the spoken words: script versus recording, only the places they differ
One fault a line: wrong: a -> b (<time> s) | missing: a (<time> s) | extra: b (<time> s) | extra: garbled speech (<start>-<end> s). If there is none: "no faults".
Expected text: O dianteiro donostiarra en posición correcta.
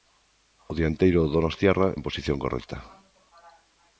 no faults